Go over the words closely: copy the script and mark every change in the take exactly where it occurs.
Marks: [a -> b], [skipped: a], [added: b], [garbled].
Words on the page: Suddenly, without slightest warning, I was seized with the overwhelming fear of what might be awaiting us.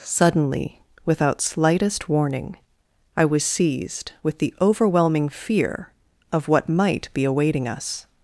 Suddenly, without slightest warning, I was seized with the overwhelming fear of what might be awaiting us.